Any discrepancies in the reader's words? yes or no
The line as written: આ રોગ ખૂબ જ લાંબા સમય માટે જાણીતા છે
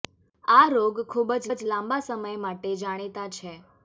yes